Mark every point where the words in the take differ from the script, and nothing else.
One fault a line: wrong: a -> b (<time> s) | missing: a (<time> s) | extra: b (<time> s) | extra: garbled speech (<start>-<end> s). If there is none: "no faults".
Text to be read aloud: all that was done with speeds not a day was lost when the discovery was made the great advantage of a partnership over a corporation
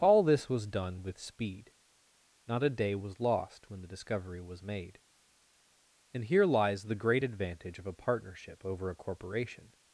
wrong: that -> this (0.2 s)
wrong: speeds -> speed (1.2 s)
extra: and here lies (6.1 s)